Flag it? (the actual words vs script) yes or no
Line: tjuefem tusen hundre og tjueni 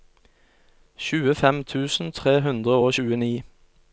yes